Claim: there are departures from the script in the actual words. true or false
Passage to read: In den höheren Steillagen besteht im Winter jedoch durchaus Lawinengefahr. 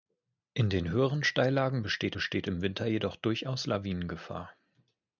true